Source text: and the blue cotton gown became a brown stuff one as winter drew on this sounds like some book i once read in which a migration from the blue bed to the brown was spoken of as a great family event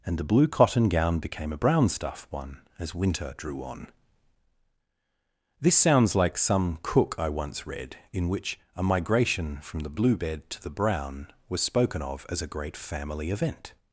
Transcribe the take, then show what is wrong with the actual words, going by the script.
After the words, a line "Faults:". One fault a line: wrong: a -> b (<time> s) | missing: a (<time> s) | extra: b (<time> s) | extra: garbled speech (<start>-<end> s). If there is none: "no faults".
and the blue cotton gown became a brown stuff one as winter drew on this sounds like some cook i once read in which a migration from the blue bed to the brown was spoken of as a great family event
Faults:
wrong: book -> cook (6.8 s)